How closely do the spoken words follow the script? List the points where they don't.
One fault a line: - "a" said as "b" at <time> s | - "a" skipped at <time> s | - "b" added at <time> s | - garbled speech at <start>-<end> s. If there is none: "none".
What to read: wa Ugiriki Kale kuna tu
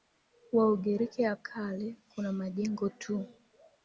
- "ya" added at 1.2 s
- "majengo" added at 2.3 s